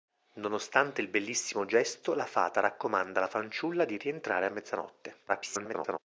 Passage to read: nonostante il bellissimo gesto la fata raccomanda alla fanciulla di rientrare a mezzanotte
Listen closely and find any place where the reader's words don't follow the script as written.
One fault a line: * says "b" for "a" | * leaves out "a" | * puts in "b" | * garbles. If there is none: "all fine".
* garbles